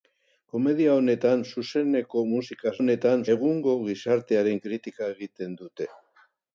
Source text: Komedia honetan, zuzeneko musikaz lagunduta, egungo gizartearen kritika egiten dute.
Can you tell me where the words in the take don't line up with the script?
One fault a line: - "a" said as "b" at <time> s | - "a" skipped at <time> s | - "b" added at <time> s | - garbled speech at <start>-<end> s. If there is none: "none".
- "lagunduta" said as "honetan" at 2.8 s